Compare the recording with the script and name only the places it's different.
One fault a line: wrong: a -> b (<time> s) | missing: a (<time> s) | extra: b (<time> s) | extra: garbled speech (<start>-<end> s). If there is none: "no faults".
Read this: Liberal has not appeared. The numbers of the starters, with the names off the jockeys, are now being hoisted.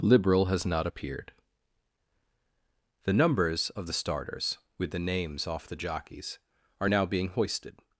no faults